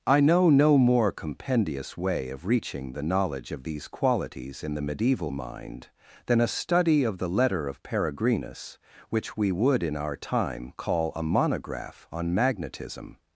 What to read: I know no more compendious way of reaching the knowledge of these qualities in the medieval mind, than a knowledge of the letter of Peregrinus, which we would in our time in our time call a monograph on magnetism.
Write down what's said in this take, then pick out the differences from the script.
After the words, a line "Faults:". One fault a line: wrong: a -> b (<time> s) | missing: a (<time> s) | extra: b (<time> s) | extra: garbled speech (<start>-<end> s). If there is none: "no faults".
I know no more compendious way of reaching the knowledge of these qualities in the medieval mind, than a study of the letter of Peregrinus, which we would in our time call a monograph on magnetism.
Faults:
wrong: knowledge -> study (6.5 s)
missing: in our time (10.7 s)